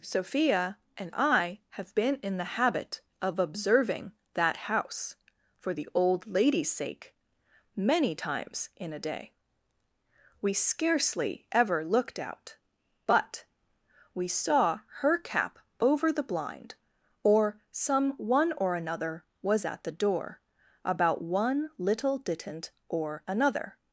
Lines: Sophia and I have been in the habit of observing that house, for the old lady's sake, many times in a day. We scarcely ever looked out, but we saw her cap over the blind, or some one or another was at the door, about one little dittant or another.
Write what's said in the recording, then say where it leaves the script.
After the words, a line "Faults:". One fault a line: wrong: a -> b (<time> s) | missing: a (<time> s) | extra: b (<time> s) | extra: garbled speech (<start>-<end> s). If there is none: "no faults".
Sophia and I have been in the habit of observing that house, for the old lady's sake, many times in a day. We scarcely ever looked out, but we saw her cap over the blind, or some one or another was at the door, about one little dittant or another.
Faults:
no faults